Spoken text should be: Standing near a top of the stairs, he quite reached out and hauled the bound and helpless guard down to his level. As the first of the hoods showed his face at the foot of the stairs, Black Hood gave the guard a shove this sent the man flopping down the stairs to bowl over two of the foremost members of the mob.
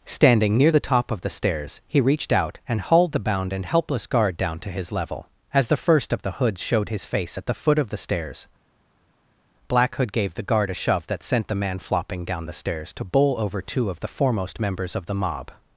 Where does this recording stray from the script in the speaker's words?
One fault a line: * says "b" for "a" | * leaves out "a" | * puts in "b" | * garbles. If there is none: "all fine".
* says "the" for "a"
* leaves out "quite"
* says "that" for "this"